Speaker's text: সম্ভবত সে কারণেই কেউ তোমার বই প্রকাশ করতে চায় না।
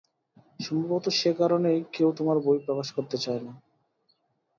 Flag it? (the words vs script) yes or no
no